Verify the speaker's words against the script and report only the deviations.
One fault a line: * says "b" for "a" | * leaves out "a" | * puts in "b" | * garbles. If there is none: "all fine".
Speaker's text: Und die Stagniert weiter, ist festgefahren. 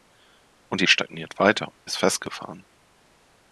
all fine